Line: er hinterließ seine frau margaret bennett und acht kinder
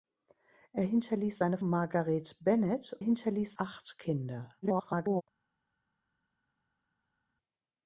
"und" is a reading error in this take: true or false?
true